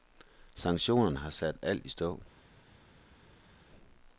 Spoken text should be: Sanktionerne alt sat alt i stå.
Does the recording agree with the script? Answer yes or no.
no